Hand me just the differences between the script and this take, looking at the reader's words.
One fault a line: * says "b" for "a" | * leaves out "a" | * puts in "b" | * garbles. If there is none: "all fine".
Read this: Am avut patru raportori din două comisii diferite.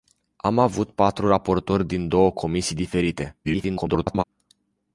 * garbles